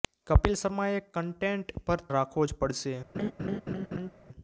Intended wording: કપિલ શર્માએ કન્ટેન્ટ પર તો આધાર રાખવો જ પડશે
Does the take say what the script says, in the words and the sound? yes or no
no